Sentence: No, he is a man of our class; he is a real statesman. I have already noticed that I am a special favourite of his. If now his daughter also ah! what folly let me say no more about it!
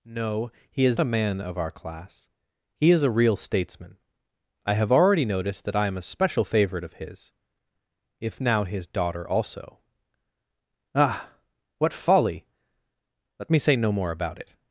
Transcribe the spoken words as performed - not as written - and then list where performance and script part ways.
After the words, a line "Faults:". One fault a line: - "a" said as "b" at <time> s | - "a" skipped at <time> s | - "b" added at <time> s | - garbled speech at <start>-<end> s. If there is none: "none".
No, he is a man of our class; he is a real statesman. I have already noticed that I am a special favourite of his. If now his daughter also ah! what folly let me say no more about it!
Faults:
none